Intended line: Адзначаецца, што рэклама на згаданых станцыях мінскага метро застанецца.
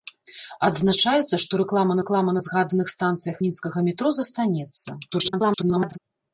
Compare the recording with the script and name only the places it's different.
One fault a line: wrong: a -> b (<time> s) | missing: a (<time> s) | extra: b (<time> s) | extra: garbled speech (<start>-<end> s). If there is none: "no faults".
extra: рэклама (2.0 s)
extra: garbled speech (5.1-6.0 s)